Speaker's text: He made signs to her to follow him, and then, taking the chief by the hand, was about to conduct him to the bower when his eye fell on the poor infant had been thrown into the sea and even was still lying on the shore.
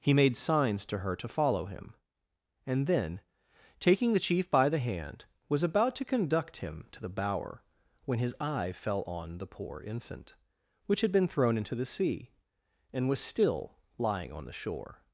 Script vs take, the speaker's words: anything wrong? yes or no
yes